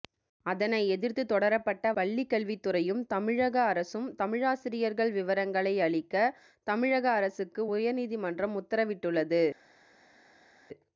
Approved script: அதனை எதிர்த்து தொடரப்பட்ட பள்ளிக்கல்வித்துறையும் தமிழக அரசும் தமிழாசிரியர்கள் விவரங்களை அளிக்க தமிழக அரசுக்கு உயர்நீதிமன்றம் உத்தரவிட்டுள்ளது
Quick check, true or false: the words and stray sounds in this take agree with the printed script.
true